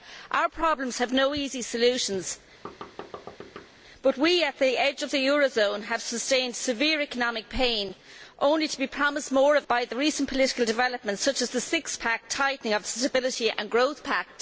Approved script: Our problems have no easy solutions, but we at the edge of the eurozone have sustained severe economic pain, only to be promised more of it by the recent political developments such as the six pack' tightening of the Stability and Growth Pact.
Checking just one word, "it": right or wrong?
wrong